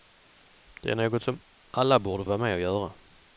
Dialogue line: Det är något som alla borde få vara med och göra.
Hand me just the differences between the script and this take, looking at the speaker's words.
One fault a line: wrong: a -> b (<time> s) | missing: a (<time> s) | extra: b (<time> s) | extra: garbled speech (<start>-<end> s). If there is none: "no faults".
missing: få (2.2 s)